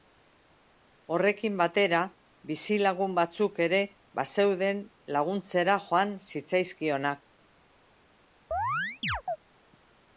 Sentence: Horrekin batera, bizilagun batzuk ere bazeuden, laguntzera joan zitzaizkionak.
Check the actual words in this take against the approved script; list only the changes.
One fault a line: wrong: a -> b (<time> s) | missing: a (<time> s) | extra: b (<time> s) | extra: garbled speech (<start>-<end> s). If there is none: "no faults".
no faults